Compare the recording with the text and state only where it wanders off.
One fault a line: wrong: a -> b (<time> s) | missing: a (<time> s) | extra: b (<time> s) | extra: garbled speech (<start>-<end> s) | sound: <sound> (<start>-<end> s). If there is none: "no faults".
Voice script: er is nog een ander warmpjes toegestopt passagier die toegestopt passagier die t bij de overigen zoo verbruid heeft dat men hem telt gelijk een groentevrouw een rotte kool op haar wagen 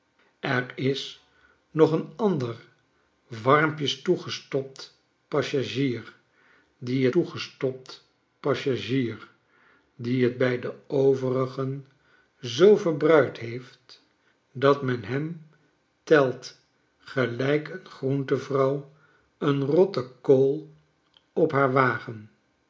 no faults